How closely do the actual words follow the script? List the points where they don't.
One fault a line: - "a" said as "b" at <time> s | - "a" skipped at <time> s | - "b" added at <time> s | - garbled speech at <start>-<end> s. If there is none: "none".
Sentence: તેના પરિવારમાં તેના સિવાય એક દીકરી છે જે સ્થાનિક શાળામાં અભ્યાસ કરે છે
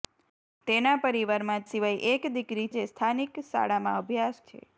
- "તેના" skipped at 1.7 s
- "છે" skipped at 2.7 s
- "કરે" skipped at 4.4 s